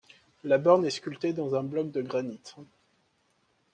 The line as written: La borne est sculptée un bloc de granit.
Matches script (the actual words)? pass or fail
fail